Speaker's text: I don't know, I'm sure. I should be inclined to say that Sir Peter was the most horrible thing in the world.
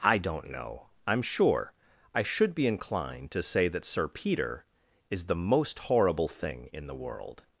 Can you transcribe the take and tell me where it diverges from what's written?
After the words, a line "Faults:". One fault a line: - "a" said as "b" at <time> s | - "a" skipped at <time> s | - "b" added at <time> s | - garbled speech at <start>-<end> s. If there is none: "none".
I don't know, I'm sure. I should be inclined to say that Sir Peter is the most horrible thing in the world.
Faults:
- "was" said as "is" at 5.1 s